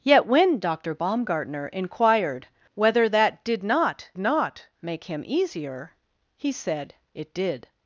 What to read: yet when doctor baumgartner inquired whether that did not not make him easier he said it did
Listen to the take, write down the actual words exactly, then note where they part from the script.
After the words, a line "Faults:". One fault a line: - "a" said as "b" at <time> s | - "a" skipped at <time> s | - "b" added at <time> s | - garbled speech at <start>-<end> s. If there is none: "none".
yet when doctor baumgartner inquired whether that did not not make him easier he said it did
Faults:
none